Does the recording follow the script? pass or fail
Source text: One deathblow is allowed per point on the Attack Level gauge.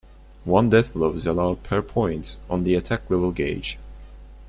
pass